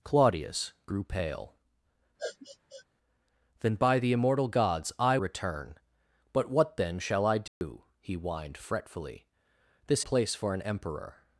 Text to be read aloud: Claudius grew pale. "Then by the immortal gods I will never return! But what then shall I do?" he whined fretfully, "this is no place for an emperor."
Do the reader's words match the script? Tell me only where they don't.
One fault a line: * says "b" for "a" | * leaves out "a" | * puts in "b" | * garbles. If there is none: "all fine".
* leaves out "will never"
* leaves out "is no"